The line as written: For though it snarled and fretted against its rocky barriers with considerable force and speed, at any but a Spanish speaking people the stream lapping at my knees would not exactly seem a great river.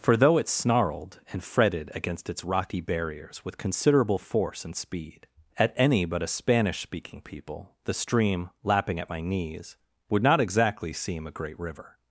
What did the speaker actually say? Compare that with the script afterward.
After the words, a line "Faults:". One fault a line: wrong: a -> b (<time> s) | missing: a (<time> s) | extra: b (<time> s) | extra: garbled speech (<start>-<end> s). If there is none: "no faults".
For though it snarled and fretted against its rocky barriers with considerable force and speed, at any but a Spanish speaking people the stream lapping at my knees would not exactly seem a great river.
Faults:
no faults